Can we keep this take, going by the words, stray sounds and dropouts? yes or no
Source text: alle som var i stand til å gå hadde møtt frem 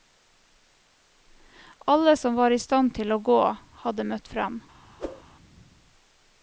no